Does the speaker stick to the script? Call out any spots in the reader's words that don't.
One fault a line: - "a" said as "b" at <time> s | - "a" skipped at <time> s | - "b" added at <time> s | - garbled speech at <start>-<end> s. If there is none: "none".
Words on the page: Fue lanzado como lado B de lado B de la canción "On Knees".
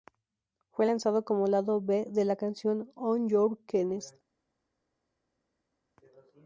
- "lado B de" skipped at 2.2 s
- "Your" added at 3.3 s